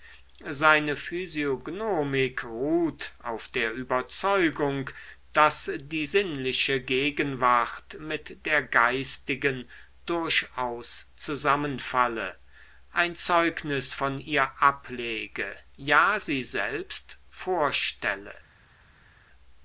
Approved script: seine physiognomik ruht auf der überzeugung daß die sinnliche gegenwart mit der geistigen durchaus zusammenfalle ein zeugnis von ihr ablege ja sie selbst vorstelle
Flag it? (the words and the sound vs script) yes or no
no